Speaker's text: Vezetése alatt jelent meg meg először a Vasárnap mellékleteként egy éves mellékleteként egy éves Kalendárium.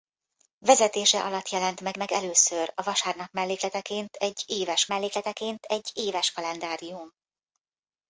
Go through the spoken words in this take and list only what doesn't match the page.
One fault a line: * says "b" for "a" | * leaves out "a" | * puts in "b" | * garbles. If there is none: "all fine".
all fine